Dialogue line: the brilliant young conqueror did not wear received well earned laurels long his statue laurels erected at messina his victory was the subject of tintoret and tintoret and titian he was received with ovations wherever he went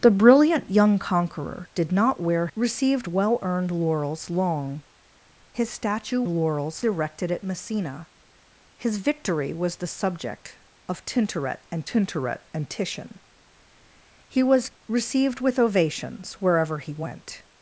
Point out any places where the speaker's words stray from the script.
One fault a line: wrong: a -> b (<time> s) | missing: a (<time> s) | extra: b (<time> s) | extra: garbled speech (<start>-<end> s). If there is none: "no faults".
no faults